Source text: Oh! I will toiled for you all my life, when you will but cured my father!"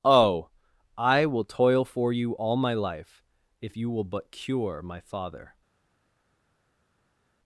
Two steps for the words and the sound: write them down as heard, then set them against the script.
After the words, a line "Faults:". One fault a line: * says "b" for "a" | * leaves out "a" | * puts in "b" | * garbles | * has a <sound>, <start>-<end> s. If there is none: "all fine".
Oh! I will toil for you all my life, if you will but cure my father!"
Faults:
* says "toil" for "toiled"
* says "if" for "when"
* says "cure" for "cured"